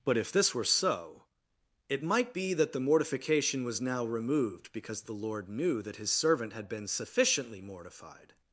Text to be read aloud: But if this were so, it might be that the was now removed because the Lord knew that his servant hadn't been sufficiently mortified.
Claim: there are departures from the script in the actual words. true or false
true